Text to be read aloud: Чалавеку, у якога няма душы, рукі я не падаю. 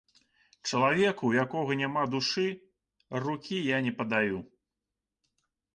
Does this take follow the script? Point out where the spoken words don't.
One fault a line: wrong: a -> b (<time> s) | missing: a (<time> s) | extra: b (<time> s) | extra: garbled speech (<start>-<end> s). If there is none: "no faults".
no faults